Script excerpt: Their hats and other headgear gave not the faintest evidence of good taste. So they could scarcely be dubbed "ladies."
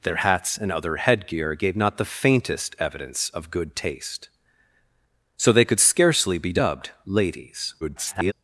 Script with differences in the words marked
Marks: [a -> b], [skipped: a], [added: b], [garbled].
Their hats and other headgear gave not the faintest evidence of good taste. So they could scarcely be dubbed "ladies." [garbled]